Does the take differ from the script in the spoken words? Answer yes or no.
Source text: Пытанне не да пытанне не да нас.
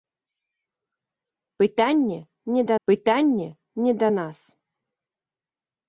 no